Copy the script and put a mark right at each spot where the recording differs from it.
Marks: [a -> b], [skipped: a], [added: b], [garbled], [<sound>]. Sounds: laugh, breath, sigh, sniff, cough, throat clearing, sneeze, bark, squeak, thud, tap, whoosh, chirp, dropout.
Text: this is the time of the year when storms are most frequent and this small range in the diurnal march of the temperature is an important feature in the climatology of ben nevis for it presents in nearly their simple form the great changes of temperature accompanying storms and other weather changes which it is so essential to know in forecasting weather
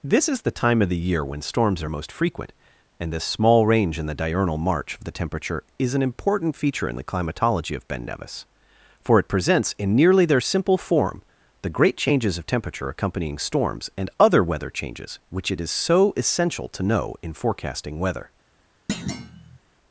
this is the time of the year when storms are most frequent and this small range in the diurnal march of the temperature is an important feature in the climatology of ben nevis for it presents in nearly their simple form the great changes of temperature accompanying storms and other weather changes which it is so essential to know in forecasting weather [thud]